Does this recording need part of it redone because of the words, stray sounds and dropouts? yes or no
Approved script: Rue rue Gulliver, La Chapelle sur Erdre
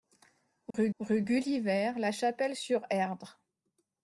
yes